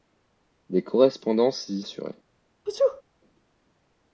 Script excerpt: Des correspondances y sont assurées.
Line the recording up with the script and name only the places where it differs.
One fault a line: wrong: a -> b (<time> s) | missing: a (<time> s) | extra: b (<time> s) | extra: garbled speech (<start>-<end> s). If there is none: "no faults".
missing: sont (1.8 s)